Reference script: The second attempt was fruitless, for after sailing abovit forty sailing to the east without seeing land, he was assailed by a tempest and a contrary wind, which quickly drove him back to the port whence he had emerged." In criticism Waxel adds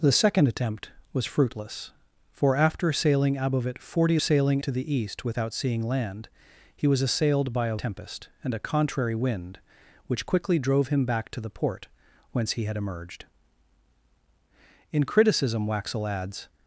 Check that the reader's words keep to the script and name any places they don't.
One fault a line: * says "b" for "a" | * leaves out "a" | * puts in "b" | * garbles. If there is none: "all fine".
all fine